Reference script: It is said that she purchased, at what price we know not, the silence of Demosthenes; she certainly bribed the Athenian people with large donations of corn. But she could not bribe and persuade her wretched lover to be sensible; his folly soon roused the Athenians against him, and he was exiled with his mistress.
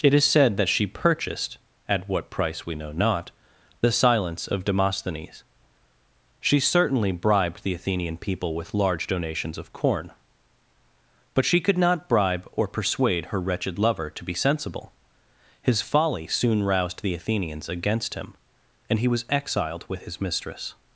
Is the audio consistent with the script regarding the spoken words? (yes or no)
no